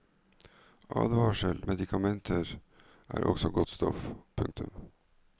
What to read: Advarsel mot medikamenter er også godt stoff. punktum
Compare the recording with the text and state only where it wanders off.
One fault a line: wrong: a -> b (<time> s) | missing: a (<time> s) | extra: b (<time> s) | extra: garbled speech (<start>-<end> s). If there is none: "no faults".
missing: mot (1.6 s)